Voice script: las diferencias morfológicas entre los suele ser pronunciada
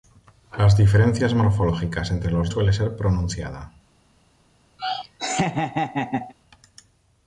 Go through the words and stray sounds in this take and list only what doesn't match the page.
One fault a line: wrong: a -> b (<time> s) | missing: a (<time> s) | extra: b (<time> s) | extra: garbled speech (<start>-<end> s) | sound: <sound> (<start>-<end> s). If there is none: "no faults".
sound: laugh (4.8-6.3 s)